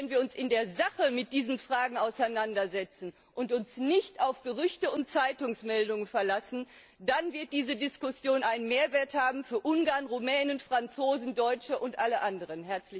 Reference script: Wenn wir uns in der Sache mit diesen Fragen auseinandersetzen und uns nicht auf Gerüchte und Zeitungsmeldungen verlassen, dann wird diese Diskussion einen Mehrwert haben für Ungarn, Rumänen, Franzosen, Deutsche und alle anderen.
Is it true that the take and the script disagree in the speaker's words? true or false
false